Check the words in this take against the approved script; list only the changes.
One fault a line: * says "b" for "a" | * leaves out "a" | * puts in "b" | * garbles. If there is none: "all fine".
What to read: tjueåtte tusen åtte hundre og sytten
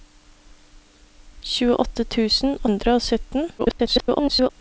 * leaves out "åtte"
* garbles